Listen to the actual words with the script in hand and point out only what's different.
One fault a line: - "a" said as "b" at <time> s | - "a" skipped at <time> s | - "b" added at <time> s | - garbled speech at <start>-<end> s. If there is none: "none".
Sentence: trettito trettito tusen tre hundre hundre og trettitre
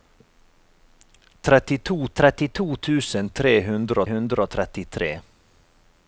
none